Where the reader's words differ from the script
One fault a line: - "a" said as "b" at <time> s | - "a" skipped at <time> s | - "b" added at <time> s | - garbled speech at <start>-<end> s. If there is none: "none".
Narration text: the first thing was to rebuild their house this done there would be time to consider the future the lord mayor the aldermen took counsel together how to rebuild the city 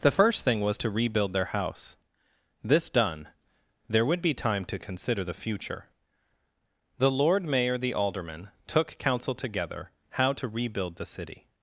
none